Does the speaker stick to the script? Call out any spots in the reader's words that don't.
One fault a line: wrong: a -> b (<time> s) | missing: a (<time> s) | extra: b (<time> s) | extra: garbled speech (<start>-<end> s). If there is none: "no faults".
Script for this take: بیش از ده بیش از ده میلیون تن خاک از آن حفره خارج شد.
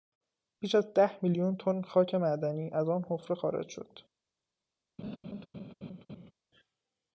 missing: بیش از ده (1.2 s)
extra: معدنی (2.1 s)